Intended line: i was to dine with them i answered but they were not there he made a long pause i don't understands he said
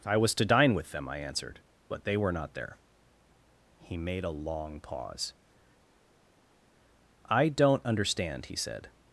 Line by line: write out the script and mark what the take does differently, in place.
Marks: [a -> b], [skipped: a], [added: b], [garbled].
i was to dine with them i answered but they were not there he made a long pause i don't [understands -> understand] he said